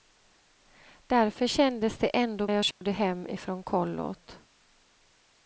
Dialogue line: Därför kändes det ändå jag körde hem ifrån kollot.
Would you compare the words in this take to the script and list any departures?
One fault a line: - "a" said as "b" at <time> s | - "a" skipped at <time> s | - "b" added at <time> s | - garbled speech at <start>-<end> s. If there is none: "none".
none